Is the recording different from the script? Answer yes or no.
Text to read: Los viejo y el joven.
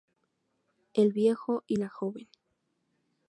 yes